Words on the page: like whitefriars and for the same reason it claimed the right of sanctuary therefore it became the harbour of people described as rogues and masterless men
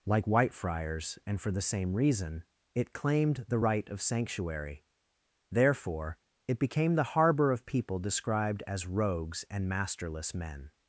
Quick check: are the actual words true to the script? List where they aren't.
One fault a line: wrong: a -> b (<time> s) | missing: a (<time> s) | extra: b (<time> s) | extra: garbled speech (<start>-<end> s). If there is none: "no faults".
no faults